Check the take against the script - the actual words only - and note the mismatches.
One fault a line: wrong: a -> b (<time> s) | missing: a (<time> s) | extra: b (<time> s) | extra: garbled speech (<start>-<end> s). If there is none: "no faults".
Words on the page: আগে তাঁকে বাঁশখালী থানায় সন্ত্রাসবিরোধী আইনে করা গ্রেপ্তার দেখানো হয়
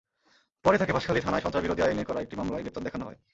wrong: আগে -> পরে (0.7 s)
extra: একটি মামলায় (2.2 s)